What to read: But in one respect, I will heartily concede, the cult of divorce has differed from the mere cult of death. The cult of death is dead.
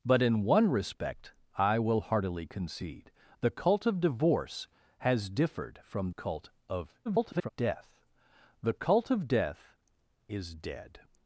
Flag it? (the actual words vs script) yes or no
yes